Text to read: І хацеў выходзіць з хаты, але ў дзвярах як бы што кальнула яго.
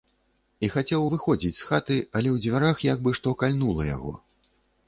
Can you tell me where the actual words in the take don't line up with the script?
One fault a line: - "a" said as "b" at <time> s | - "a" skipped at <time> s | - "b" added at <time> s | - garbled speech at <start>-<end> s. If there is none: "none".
none